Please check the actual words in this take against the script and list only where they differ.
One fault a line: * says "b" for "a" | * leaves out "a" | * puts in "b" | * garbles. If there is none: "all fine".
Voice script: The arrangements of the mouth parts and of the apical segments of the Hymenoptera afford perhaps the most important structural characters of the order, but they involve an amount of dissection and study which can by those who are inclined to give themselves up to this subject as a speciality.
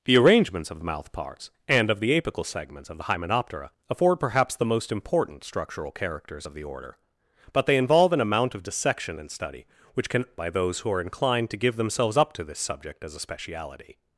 all fine